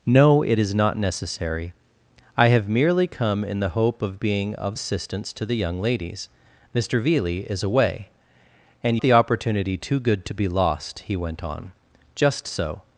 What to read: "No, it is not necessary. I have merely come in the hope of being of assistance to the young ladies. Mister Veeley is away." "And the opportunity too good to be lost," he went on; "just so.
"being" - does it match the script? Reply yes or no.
yes